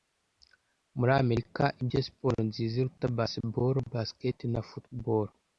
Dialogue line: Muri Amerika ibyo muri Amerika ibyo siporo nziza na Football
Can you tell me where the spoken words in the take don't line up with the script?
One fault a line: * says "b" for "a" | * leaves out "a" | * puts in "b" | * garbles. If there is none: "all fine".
* says "siporo nziza iruta Baseball Basket" for "muri Amerika ibyo siporo nziza"